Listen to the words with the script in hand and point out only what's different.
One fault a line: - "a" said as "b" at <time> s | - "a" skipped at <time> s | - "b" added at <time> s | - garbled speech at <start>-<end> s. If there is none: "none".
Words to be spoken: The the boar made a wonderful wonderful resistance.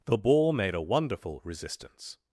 - "the" skipped at 0.2 s
- "wonderful" skipped at 1.4 s